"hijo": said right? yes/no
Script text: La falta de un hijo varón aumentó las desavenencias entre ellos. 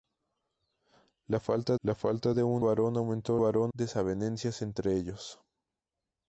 no